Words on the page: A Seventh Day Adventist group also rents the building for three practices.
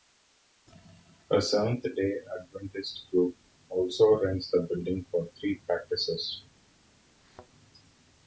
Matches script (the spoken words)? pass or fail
pass